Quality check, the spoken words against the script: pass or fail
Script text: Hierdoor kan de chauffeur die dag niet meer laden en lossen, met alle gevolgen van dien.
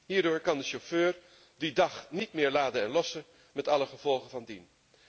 pass